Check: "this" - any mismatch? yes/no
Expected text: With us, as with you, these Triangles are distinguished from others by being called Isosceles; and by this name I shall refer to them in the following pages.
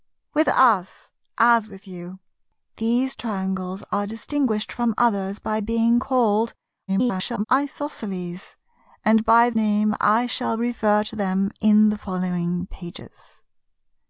yes